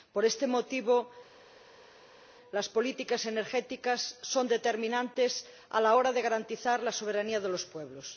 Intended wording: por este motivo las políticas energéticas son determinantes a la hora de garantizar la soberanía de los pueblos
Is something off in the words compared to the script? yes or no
no